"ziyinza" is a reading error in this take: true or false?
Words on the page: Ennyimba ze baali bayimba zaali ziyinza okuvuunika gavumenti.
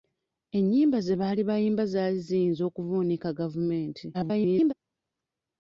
false